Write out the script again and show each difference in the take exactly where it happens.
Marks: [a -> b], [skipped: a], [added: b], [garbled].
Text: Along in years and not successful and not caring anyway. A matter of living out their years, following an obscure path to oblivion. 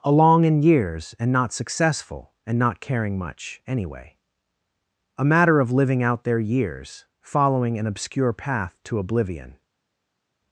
Along in years and not successful and not caring [added: much] anyway. A matter of living out their years, following an obscure path to oblivion.